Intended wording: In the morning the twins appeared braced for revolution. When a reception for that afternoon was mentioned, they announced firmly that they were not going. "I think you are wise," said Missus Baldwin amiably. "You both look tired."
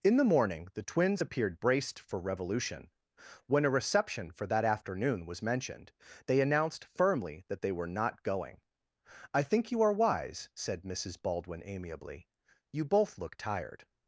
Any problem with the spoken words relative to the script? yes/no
no